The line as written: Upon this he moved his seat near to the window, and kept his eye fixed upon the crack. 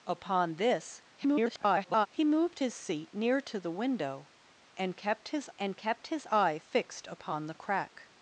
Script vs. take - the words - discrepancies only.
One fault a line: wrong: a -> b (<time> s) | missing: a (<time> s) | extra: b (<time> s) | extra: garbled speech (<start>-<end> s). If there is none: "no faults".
extra: garbled speech (1.2-2.1 s)
extra: and kept his (5.6 s)